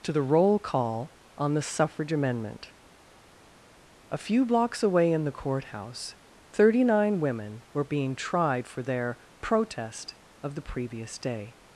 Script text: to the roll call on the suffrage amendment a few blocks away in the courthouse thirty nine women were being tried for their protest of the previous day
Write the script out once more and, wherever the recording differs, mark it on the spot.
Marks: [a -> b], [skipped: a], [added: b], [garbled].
to the roll call on the suffrage amendment a few blocks away in the courthouse thirty nine women were being tried for their protest of the previous day